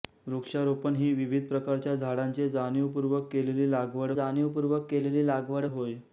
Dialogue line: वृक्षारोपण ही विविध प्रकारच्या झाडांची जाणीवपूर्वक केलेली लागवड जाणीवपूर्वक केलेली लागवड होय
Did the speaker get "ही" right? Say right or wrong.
right